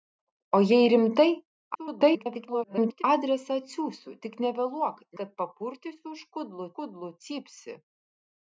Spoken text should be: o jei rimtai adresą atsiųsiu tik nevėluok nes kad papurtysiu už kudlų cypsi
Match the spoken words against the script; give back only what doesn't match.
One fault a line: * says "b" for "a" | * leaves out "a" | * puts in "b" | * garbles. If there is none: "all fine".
* garbles
* leaves out "nes"
* puts in "kudlų"